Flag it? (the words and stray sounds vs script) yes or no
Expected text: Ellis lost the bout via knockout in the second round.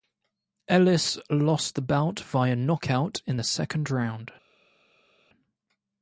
no